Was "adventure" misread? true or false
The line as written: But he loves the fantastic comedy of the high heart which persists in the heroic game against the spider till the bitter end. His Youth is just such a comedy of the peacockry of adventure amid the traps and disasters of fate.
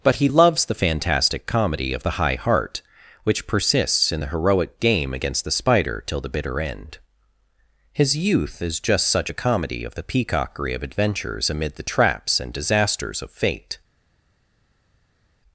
true